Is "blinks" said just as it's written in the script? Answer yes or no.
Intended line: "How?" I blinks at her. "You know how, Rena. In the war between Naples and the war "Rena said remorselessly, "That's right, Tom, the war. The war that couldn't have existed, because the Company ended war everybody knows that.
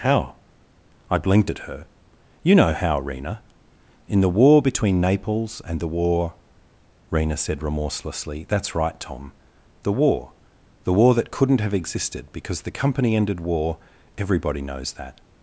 no